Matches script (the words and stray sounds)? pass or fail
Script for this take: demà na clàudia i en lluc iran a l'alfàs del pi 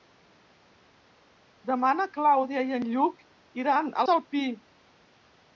fail